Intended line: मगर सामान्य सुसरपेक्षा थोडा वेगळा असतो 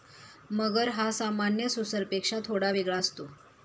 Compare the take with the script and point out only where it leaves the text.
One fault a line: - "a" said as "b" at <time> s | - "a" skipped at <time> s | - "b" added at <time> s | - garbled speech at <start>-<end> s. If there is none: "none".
- "हा" added at 0.9 s